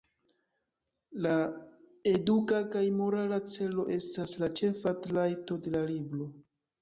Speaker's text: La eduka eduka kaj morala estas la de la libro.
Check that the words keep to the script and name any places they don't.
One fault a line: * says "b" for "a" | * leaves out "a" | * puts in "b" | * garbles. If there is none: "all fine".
* leaves out "eduka"
* puts in "celo"
* puts in "ĉefa trajto"